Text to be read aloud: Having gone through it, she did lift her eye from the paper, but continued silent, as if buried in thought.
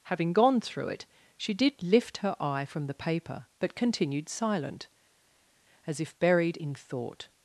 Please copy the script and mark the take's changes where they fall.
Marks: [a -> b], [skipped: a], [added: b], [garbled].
Having gone through it, she did lift her eye from the paper, but continued silent, as if buried in thought.